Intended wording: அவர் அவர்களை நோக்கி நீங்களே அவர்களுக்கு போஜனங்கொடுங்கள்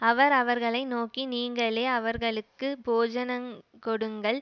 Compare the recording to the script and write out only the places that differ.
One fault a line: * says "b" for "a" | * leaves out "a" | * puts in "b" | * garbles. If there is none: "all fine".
all fine